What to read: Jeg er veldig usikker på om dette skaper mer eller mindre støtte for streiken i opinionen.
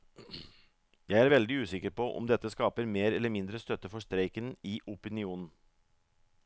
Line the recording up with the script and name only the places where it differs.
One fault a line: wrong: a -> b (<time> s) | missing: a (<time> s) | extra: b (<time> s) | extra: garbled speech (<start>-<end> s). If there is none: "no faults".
no faults